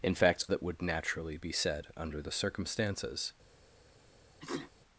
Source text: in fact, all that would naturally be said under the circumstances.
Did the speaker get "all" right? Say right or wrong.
wrong